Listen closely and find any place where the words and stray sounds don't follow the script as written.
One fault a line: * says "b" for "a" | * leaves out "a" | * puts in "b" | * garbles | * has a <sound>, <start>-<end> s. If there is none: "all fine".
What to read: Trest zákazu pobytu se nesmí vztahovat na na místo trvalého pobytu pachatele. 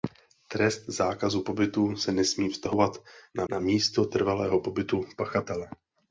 all fine